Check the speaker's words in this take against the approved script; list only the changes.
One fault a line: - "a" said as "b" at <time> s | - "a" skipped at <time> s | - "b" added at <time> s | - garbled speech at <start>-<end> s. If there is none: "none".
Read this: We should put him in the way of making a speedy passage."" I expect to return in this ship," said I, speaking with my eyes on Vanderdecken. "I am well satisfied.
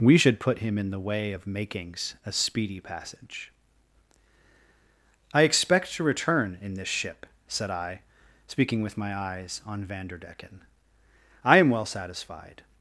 - "making" said as "makings" at 1.5 s